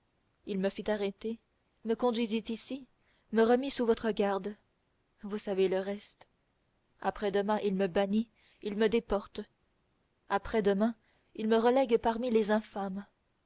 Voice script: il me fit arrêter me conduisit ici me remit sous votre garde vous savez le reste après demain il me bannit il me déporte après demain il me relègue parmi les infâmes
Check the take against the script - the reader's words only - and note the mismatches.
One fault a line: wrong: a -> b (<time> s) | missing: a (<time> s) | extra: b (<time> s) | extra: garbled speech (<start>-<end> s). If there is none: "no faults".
no faults